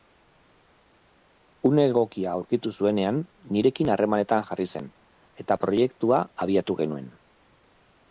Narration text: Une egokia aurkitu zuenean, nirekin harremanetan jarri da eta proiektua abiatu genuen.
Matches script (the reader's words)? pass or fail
fail